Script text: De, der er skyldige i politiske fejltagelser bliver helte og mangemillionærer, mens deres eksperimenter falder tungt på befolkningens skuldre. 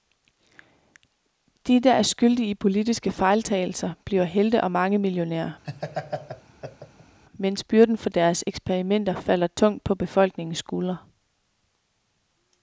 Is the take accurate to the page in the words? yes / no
no